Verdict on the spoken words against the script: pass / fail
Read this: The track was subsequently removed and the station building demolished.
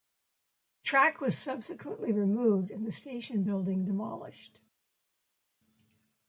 pass